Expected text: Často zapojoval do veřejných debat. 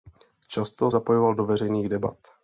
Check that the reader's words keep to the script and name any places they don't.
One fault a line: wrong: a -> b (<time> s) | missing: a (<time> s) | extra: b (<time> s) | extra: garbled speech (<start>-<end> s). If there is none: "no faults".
no faults